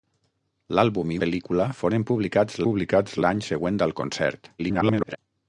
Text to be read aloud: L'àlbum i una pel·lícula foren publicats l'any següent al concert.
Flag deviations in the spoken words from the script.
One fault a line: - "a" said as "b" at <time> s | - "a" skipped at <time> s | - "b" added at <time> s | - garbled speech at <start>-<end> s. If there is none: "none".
- "una" skipped at 1.2 s
- "publicats" added at 2.7 s
- garbled speech at 4.6-5.2 s